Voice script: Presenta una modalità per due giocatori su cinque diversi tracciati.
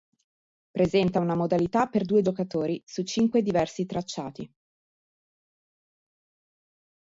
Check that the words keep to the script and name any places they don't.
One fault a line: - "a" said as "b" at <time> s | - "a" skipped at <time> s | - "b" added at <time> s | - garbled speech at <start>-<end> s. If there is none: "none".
none